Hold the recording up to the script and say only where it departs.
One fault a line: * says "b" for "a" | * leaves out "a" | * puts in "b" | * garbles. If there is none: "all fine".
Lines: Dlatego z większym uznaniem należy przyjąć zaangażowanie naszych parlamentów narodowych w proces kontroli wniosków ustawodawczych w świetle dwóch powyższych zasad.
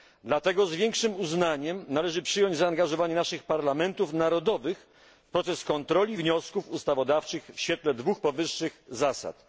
all fine